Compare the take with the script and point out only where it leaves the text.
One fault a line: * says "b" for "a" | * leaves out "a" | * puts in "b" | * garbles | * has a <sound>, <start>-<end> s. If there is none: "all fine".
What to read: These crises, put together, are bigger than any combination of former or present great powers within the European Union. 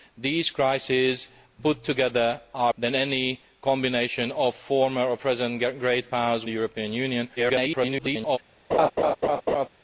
* leaves out "bigger"
* leaves out "within"
* garbles
* has a laugh, 8.7-9.7 s